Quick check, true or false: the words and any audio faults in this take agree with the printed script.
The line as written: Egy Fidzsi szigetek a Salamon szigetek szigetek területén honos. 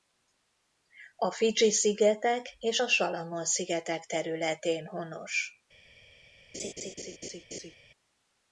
false